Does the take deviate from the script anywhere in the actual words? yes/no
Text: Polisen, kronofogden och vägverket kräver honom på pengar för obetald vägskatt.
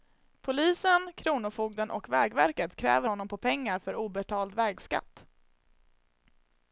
no